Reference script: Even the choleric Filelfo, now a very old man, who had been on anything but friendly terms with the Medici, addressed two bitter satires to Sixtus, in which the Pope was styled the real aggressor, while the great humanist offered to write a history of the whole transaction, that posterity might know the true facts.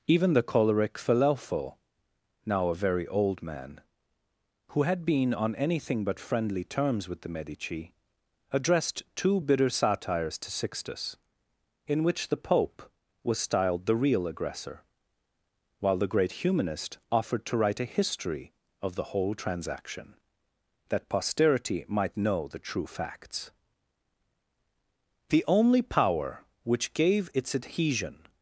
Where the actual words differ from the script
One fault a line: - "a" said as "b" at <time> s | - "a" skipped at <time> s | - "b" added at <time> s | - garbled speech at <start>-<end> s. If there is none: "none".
- "The only power which gave its adhesion" added at 25.3 s